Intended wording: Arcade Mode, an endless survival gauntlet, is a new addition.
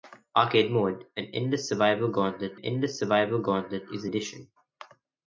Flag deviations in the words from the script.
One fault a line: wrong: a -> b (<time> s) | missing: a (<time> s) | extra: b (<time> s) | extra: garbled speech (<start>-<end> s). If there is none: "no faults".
extra: endless survival gauntlet (2.6 s)
missing: new (4.1 s)